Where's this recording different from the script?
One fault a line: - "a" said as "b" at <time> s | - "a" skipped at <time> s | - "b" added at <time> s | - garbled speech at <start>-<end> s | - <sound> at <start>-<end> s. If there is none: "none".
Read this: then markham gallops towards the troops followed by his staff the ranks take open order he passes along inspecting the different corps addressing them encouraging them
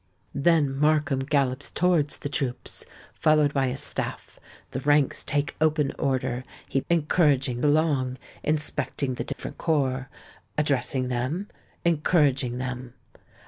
- "passes" said as "encouraging" at 6.9 s
- dropout at 9.3-9.4 s